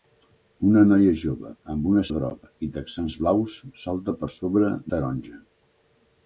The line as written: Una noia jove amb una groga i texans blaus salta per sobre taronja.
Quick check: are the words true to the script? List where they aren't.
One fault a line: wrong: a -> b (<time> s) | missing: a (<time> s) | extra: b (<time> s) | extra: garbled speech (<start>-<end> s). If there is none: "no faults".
no faults